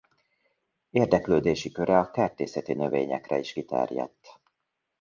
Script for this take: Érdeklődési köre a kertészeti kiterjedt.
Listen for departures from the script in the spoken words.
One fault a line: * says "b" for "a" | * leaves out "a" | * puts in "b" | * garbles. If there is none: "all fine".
* puts in "növényekre is"